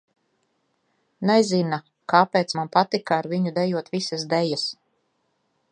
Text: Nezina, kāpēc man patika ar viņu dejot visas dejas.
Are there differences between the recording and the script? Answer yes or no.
no